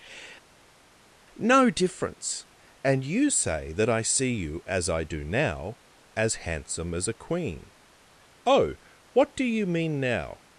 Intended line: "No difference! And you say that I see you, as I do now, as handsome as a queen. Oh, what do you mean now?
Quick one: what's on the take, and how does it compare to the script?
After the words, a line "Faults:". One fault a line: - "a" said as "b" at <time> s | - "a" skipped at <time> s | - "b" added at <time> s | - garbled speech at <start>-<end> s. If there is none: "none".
"No difference! And you say that I see you, as I do now, as handsome as a queen. Oh, what do you mean now?
Faults:
none